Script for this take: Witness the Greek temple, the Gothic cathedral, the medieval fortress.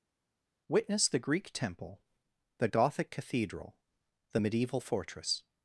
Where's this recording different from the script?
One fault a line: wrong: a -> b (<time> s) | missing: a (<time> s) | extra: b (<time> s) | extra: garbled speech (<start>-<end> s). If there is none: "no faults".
no faults